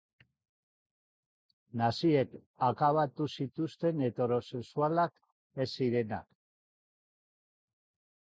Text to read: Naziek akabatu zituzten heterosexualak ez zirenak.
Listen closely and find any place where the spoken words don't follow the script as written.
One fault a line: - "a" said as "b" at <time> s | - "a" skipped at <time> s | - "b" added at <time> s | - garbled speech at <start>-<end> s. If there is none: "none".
none